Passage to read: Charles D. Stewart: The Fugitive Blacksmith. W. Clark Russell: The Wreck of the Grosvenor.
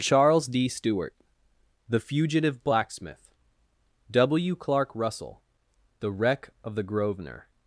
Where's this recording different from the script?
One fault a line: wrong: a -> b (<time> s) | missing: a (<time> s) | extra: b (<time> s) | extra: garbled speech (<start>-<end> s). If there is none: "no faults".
no faults